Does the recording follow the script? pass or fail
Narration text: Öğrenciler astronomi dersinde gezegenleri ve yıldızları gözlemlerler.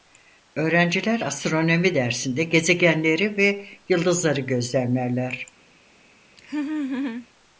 pass